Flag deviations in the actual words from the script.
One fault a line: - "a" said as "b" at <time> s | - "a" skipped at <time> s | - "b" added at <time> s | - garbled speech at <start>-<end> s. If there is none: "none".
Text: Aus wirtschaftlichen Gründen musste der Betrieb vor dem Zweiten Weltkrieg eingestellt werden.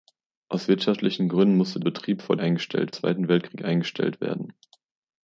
- "der" skipped at 1.8 s
- "dem" said as "eingestellt" at 2.4 s